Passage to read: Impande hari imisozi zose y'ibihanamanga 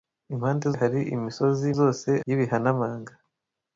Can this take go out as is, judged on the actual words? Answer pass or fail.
pass